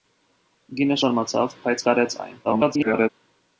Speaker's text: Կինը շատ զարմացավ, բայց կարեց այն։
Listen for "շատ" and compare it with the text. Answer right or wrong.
wrong